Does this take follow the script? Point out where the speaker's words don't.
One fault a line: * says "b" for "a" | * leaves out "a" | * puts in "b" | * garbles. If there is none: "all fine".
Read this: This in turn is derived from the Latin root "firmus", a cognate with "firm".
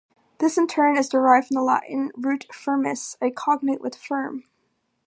all fine